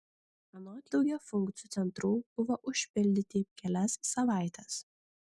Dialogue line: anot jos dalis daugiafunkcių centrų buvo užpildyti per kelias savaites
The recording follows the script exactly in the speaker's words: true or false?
false